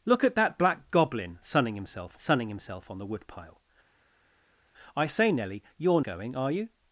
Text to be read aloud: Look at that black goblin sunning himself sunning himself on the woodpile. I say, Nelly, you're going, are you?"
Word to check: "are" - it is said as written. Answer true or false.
true